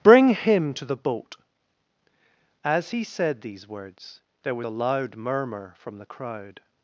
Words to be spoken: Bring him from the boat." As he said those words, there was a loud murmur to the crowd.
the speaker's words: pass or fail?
fail